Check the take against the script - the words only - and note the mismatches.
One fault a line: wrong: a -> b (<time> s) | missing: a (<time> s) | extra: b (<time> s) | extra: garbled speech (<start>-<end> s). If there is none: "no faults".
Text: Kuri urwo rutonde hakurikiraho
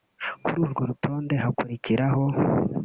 no faults